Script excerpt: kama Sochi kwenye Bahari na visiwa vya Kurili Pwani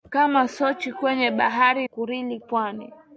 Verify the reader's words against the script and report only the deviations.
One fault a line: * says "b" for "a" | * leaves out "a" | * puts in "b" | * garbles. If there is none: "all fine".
* leaves out "na visiwa vya"